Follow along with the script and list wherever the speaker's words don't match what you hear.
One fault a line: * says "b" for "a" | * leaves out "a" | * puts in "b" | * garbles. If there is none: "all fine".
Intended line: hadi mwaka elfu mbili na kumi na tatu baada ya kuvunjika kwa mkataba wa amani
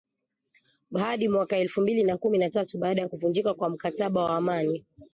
all fine